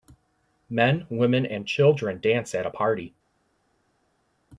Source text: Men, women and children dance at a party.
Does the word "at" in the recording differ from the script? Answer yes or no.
no